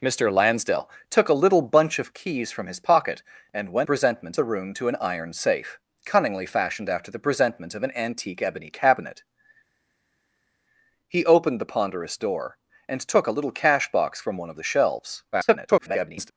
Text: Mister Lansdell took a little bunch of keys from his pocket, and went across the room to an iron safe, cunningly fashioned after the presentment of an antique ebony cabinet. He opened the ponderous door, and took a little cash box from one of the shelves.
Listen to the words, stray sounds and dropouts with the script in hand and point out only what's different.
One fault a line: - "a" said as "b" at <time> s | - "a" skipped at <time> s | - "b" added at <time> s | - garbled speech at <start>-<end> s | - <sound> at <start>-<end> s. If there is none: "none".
- "across" said as "presentment" at 3.8 s
- garbled speech at 15.3-16.3 s